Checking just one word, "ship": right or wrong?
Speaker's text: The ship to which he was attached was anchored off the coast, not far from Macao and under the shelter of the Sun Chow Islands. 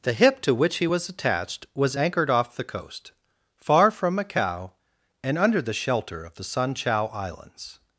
wrong